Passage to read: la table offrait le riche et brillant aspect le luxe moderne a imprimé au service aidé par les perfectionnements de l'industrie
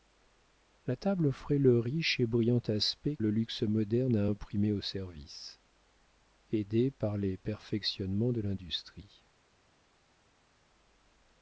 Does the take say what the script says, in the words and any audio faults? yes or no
yes